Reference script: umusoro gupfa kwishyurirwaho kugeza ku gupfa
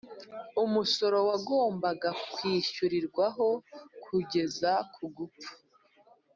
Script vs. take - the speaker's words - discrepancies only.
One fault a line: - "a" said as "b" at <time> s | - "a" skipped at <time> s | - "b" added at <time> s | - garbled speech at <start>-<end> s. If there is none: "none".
- "gupfa" said as "wagombaga" at 1.3 s